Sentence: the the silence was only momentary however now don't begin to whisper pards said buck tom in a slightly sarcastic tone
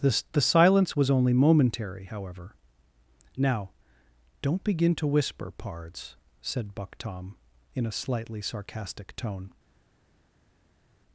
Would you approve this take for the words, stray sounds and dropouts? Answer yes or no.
yes